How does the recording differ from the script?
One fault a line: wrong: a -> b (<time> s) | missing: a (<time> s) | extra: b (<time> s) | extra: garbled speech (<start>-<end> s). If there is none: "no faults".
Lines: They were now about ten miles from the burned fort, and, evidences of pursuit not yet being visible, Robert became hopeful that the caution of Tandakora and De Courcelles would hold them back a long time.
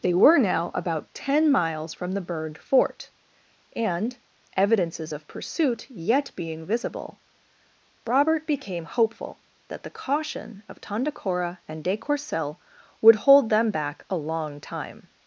missing: not (5.9 s)